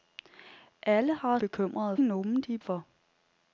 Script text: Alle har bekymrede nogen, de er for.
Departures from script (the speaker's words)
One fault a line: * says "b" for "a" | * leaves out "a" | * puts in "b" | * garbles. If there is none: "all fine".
all fine